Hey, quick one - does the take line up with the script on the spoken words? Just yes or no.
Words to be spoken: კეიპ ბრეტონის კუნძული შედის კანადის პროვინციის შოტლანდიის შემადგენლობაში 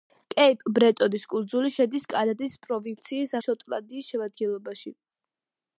yes